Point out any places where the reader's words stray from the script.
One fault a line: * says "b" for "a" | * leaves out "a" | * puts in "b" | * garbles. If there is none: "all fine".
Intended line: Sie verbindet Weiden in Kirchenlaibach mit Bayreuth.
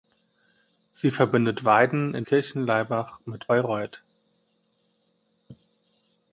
all fine